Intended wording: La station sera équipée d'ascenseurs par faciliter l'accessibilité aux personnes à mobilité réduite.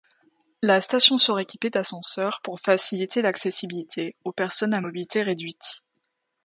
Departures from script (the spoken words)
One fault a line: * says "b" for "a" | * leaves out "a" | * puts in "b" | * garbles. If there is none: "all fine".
* says "pour" for "par"